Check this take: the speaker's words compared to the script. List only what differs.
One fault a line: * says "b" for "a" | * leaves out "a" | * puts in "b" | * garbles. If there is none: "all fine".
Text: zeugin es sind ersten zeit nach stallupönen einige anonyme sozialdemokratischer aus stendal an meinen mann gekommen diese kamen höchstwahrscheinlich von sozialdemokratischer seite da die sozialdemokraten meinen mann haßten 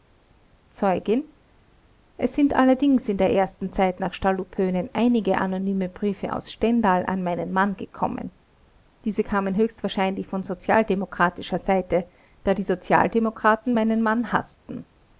* puts in "allerdings in der"
* says "briefe" for "sozialdemokratischer"